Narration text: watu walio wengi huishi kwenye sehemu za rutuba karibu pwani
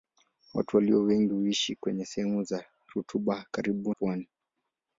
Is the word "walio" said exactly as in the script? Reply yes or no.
yes